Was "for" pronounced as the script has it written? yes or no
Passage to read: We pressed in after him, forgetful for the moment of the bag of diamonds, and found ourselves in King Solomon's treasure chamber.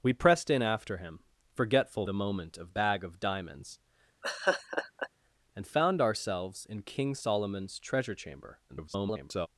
no